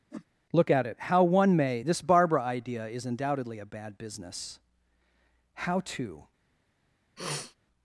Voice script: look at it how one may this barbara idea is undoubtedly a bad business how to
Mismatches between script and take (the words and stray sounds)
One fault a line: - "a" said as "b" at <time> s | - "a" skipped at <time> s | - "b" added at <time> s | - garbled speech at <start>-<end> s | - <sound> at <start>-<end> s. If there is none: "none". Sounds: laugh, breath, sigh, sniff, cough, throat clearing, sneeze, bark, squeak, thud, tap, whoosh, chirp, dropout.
- whoosh at 0.1-0.3 s
- sniff at 7.2-7.6 s